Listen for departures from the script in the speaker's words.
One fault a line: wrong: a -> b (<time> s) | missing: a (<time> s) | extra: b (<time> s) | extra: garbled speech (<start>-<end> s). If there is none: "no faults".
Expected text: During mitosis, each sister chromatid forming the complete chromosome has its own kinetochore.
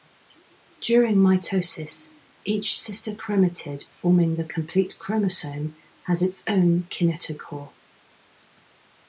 no faults